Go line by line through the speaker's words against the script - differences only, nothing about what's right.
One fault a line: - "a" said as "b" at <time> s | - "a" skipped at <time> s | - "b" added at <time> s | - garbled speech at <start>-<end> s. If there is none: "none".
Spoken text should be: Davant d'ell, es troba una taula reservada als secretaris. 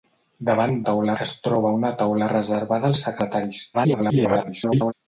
- "d'ell" said as "taula" at 0.9 s
- garbled speech at 3.7-4.9 s